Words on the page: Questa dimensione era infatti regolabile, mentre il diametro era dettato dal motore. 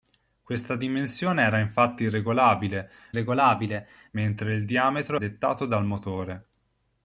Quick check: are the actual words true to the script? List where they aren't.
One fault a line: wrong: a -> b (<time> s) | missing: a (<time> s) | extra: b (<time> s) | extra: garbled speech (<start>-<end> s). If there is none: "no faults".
extra: regolabile (3.1 s)
missing: era (5.2 s)